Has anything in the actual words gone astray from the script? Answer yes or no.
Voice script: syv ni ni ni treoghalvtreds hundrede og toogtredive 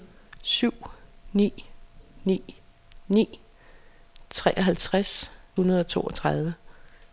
no